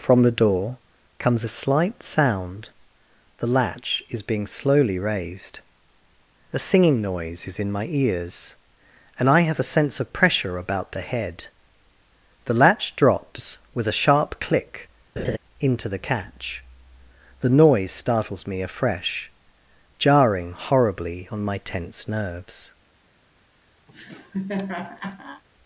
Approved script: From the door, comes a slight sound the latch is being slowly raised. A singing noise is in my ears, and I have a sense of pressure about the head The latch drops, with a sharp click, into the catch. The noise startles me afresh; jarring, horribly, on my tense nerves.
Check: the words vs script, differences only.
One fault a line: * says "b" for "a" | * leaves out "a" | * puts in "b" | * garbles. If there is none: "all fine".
all fine